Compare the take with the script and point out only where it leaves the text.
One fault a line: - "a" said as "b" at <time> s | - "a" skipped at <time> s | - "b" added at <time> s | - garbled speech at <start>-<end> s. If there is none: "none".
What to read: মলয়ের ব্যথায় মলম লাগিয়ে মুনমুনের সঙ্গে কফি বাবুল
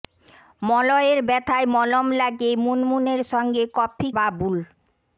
none